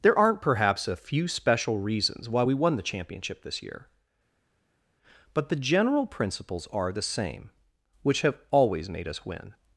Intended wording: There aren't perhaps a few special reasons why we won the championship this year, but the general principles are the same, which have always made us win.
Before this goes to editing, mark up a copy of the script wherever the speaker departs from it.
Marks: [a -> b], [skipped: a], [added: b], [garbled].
There aren't perhaps a few special reasons why we won the championship this year, but the general principles are the same, which have always made us win.